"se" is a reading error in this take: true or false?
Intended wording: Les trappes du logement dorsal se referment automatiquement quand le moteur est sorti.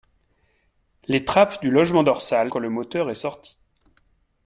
true